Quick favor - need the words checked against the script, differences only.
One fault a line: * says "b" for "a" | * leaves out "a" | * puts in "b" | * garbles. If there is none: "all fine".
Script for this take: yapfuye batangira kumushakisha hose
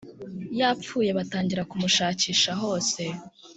all fine